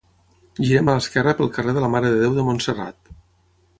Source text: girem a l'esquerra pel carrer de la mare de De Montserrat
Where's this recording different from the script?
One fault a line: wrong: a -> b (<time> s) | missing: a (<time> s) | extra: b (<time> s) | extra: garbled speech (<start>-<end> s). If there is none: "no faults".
extra: Déu (2.2 s)